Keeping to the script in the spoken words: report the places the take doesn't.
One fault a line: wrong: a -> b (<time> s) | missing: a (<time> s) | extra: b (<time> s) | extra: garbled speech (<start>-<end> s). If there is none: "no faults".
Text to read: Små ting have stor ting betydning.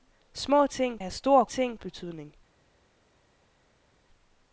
no faults